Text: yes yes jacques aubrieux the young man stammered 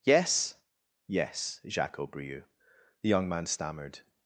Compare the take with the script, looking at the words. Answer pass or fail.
pass